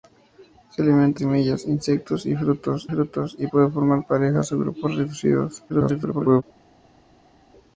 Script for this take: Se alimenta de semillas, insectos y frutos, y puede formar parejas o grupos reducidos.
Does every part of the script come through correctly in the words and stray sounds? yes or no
no